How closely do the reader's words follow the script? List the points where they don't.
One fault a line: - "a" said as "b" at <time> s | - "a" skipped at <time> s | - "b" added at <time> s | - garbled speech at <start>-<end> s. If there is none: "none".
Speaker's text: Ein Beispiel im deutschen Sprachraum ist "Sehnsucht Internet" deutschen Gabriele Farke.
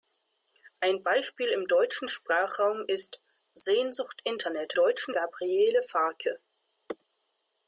none